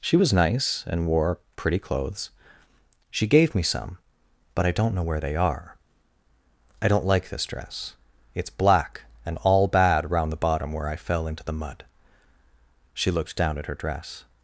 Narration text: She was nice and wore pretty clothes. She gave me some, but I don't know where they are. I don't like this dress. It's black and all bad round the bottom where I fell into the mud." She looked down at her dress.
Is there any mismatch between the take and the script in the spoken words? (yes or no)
no